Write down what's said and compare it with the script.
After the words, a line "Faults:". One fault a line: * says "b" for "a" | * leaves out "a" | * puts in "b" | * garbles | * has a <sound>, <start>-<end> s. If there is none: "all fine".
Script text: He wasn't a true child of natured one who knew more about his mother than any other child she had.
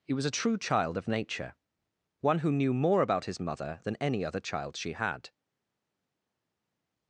He was a true child of nature one who knew more about his mother than any other child she had.
Faults:
* says "was" for "wasn't"
* says "nature" for "natured"